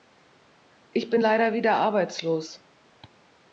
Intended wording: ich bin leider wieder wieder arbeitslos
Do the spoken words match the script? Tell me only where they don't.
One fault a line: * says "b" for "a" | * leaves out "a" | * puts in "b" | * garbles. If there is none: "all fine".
* leaves out "wieder"